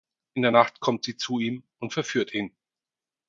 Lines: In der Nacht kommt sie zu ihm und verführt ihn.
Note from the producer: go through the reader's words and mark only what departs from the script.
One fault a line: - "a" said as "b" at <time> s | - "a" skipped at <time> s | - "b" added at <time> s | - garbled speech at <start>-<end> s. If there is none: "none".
none